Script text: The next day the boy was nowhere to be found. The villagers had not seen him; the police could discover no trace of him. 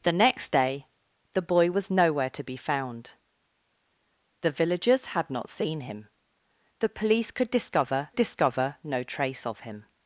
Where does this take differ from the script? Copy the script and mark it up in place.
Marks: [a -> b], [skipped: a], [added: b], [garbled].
The next day the boy was nowhere to be found. The villagers had not seen him; the police could discover [added: discover] no trace of him.